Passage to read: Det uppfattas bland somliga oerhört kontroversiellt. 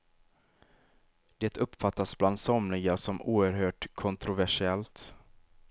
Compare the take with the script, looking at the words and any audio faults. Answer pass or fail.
fail